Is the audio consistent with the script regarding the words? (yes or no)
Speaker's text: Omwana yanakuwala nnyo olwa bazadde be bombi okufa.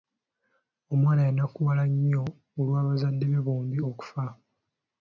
yes